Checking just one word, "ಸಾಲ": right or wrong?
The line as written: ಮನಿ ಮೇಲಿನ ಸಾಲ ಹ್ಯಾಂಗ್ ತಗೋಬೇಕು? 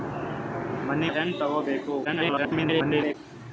wrong